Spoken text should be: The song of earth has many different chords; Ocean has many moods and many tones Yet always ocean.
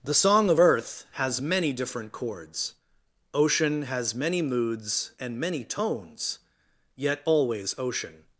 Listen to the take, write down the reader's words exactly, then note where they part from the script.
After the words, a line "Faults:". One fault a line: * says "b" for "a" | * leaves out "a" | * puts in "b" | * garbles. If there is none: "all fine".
The song of earth has many different chords; Ocean has many moods and many tones Yet always ocean.
Faults:
all fine